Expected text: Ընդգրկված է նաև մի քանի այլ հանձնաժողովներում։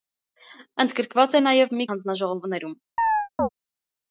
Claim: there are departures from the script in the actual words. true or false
true